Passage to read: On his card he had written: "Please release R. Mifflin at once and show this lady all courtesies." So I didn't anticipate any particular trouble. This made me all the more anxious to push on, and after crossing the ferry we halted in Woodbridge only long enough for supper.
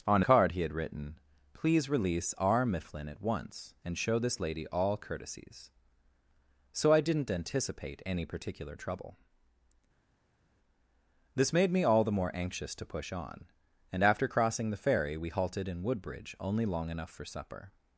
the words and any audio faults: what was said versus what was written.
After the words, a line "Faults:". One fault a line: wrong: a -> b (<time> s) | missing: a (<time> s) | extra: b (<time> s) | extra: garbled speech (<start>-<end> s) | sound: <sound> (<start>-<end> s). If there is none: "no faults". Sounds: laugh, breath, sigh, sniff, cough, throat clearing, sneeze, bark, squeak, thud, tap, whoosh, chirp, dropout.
On card he had written: "Please release R. Mifflin at once and show this lady all courtesies." So I didn't anticipate any particular trouble. This made me all the more anxious to push on, and after crossing the ferry we halted in Woodbridge only long enough for supper.
Faults:
missing: his (0.2 s)